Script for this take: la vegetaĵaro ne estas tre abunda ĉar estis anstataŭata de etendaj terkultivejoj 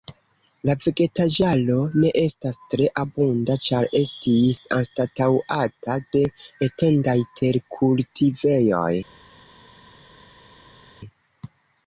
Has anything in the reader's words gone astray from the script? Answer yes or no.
no